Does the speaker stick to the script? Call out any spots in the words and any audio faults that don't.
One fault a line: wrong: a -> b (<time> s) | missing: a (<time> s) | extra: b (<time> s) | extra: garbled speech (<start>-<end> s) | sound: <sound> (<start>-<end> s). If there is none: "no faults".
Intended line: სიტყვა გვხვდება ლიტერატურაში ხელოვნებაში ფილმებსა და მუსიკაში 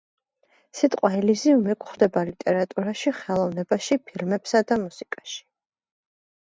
extra: ელიზიუმი (1.2 s)